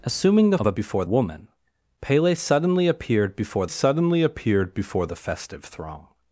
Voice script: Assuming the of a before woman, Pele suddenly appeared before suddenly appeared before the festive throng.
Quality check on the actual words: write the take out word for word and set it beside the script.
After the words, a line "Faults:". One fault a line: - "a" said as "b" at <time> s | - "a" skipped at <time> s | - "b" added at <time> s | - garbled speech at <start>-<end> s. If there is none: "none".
Assuming the of a before woman, Pele suddenly appeared before suddenly appeared before the festive throng.
Faults:
none